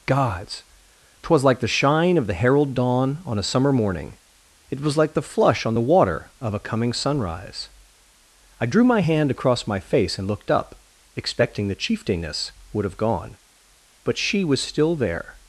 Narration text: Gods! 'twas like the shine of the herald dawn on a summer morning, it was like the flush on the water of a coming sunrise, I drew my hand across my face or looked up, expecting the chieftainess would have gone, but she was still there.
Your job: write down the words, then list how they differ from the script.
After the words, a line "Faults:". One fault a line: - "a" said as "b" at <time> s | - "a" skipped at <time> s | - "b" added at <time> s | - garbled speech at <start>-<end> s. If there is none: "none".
Gods! 'twas like the shine of the herald dawn on a summer morning, it was like the flush on the water of a coming sunrise, I drew my hand across my face and looked up, expecting the chieftainess would have gone, but she was still there.
Faults:
- "or" said as "and" at 10.2 s